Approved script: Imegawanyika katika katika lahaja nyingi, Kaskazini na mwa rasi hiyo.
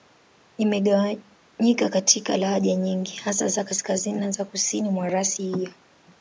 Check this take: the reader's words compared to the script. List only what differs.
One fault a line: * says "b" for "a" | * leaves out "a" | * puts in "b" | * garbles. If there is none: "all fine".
* leaves out "katika"
* puts in "hasa za"
* puts in "za Kusini"